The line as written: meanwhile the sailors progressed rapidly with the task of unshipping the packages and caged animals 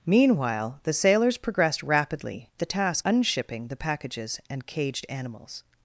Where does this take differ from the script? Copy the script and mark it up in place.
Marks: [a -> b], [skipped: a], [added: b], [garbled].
meanwhile the sailors progressed rapidly [skipped: with] the task [skipped: of] unshipping the packages and caged animals